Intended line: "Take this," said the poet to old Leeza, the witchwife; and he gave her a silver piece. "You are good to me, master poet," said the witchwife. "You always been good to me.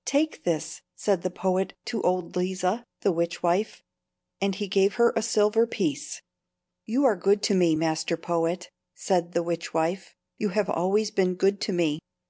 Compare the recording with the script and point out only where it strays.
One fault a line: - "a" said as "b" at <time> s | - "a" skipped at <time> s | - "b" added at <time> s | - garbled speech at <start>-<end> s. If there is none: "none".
- "have" added at 10.5 s